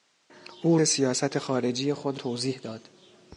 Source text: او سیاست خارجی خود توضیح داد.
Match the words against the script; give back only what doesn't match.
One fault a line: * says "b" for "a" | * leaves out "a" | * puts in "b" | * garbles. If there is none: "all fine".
all fine